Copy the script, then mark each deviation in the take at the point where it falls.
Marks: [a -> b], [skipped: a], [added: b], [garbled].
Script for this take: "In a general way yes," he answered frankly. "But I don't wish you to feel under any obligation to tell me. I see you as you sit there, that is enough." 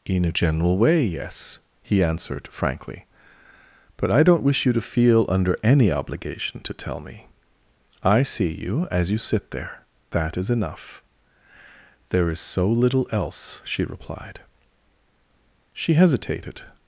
"In a general way yes," he answered frankly. "But I don't wish you to feel under any obligation to tell me. I see you as you sit there, that is enough." [added: There is so little else she replied She hesitated]